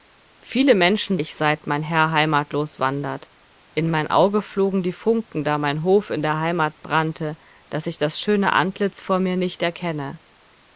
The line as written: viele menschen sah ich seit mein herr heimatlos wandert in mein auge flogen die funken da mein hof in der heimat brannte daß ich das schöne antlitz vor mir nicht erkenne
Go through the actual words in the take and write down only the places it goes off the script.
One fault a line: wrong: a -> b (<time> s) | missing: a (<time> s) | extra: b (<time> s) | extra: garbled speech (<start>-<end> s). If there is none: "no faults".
missing: sah (1.2 s)